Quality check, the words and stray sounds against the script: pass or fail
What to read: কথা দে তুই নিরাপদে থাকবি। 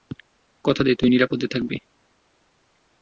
pass